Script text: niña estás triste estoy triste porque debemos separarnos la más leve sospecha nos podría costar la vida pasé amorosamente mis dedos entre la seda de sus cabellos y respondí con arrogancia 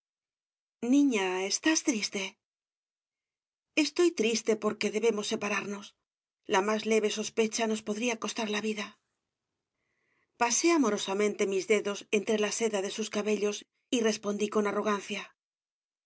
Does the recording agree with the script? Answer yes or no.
yes